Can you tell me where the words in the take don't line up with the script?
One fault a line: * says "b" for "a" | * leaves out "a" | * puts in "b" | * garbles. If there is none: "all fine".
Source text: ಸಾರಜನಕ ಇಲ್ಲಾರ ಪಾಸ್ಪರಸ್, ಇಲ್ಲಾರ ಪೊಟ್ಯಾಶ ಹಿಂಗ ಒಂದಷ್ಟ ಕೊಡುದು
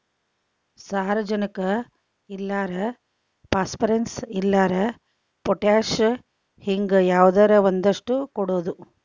* puts in "ಯಾವದರ"